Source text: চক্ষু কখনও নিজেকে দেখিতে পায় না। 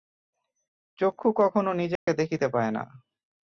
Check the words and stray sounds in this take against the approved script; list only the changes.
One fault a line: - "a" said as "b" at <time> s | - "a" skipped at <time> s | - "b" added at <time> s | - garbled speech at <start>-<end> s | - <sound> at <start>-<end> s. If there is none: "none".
- dropout at 2.0-2.1 s